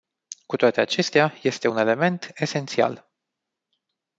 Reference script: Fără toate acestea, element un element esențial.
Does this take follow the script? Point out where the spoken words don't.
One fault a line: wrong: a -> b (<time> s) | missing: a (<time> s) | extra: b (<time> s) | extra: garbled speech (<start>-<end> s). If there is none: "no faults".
wrong: Fără -> Cu (0.5 s)
wrong: element -> este (1.4 s)